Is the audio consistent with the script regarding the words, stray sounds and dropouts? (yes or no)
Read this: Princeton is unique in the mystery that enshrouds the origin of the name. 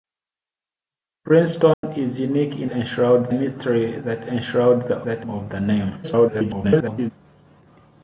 no